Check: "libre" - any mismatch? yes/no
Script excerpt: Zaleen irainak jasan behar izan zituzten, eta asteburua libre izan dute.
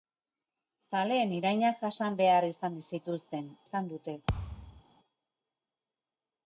yes